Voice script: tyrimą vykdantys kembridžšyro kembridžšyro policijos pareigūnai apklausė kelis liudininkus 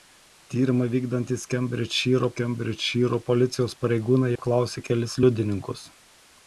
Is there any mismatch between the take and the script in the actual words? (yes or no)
no